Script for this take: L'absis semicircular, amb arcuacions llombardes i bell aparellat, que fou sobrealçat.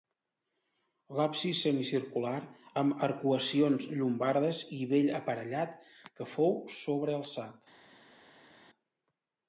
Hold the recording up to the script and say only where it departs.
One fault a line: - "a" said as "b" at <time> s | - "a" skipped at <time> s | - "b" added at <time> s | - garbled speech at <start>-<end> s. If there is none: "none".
none